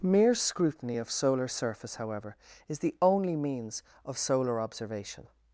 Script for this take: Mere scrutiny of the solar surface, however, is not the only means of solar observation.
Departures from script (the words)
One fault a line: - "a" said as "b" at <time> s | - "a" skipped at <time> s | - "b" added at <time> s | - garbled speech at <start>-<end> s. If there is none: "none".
- "the" skipped at 1.1 s
- "not" skipped at 2.8 s